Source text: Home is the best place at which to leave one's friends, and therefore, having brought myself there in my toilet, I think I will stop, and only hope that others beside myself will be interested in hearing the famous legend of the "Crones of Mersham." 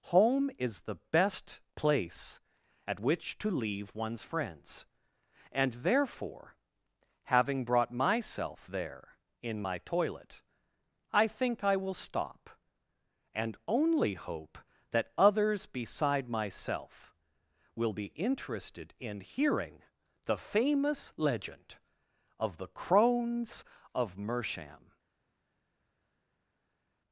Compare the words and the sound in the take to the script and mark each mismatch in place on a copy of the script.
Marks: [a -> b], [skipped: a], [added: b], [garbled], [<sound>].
Home is the best place at which to leave one's friends, and therefore, having brought myself there in my toilet, I think I will stop, and only hope that others beside myself will be interested in hearing the famous legend of the "Crones of Mersham."